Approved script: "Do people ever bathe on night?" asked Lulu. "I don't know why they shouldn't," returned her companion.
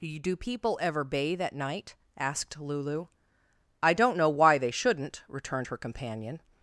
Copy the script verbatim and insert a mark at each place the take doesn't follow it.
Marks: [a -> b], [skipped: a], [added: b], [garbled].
"Do people ever bathe [on -> at] night?" asked Lulu. "I don't know why they shouldn't," returned her companion.